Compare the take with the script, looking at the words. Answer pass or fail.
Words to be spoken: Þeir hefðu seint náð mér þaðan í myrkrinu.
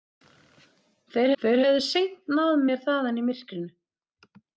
fail